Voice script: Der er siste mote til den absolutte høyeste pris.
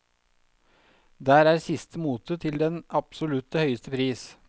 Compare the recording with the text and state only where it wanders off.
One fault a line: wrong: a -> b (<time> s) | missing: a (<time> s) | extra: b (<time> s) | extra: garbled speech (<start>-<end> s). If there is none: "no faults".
no faults